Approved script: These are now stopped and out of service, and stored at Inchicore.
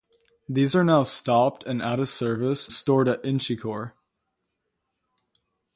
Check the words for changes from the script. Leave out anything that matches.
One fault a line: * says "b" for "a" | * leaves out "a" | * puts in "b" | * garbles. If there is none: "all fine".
* leaves out "and"